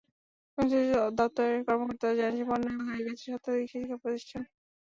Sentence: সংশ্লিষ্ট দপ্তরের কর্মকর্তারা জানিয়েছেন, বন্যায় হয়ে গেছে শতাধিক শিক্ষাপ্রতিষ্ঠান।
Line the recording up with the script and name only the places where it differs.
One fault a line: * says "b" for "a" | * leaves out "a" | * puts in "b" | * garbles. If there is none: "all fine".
all fine